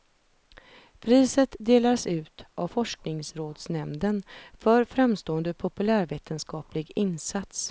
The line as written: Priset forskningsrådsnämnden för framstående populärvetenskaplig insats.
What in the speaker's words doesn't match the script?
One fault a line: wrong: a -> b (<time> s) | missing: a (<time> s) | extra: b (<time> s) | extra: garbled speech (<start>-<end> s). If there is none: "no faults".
extra: delas ut av (1.6 s)